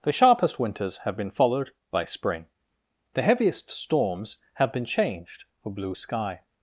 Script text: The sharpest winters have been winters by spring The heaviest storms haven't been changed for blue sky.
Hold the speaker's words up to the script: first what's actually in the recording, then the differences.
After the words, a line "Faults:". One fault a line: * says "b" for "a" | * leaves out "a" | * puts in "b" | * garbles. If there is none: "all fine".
The sharpest winters have been followed by spring The heaviest storms have been changed for blue sky.
Faults:
* says "followed" for "winters"
* says "have" for "haven't"